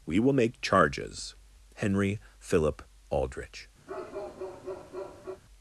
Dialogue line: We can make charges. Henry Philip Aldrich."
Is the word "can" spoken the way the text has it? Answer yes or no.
no